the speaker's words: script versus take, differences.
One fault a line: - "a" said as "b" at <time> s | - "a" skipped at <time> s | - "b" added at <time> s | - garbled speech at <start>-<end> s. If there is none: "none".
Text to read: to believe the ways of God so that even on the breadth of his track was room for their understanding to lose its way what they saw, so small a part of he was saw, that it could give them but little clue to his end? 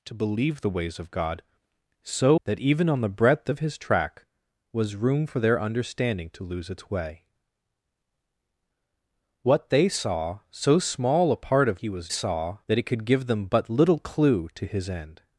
none